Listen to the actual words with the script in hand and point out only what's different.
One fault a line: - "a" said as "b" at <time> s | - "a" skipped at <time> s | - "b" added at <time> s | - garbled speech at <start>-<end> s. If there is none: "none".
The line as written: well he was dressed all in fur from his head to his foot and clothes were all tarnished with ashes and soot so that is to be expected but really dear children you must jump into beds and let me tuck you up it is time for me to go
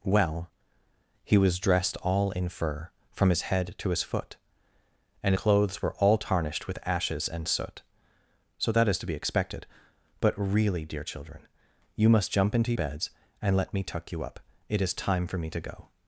none